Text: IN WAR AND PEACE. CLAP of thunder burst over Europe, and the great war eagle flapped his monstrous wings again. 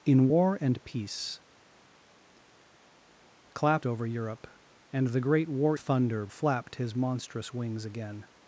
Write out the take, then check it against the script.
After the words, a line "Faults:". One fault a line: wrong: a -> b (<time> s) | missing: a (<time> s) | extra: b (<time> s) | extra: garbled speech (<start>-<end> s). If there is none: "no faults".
IN WAR AND PEACE. CLAP over Europe, and the great war thunder flapped his monstrous wings again.
Faults:
missing: of thunder burst (3.9 s)
wrong: eagle -> thunder (5.8 s)